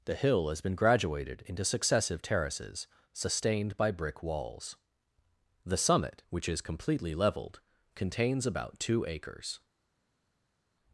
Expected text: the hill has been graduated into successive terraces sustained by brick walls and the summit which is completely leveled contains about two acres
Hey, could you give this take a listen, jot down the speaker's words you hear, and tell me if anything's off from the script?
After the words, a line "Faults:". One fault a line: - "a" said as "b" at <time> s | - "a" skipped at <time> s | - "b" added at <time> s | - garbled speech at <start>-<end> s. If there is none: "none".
the hill has been graduated into successive terraces sustained by brick walls the summit which is completely leveled contains about two acres
Faults:
- "and" skipped at 4.8 s